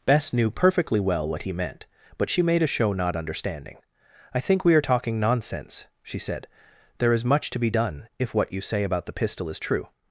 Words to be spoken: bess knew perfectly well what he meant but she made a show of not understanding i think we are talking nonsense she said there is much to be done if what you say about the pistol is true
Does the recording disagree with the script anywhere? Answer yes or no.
yes